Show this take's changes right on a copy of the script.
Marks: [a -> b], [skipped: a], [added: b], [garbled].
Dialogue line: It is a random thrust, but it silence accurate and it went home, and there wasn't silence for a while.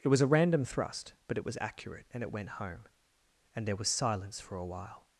It [is -> was] a random thrust, but it [silence -> was] accurate and it went home, and there [wasn't -> was] silence for a while.